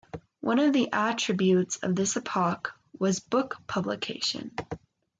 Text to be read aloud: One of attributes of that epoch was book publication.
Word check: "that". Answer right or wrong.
wrong